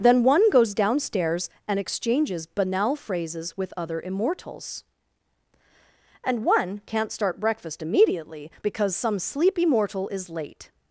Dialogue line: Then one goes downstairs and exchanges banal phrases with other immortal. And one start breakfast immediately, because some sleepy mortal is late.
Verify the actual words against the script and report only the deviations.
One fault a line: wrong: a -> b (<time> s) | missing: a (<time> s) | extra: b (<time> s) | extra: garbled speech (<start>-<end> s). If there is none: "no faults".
wrong: immortal -> immortals (4.0 s)
extra: can't (6.9 s)